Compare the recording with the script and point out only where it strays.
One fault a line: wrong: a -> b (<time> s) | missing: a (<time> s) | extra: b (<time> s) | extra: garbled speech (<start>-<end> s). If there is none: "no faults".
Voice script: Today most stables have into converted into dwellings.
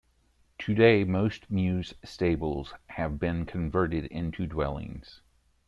extra: mews (1.5 s)
wrong: into -> been (3.2 s)